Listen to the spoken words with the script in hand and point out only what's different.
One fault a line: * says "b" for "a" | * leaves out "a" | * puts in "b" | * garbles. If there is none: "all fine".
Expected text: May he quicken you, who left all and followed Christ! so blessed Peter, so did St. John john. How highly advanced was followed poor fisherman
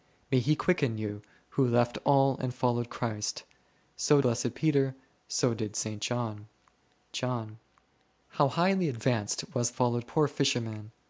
all fine